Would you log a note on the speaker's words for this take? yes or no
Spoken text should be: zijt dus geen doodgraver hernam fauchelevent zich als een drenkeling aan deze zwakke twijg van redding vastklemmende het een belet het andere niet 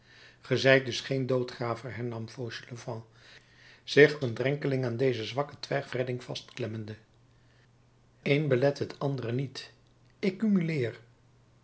yes